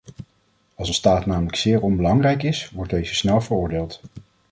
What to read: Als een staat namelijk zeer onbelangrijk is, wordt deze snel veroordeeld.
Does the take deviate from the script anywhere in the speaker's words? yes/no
no